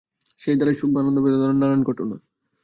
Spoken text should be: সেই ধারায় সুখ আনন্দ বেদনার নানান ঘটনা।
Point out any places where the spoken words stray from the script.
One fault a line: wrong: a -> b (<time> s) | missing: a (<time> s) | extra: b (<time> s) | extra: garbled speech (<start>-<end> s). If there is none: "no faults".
no faults